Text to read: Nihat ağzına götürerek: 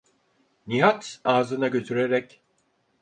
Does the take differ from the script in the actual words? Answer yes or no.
no